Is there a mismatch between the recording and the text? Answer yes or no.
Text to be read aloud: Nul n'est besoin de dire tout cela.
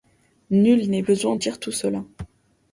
yes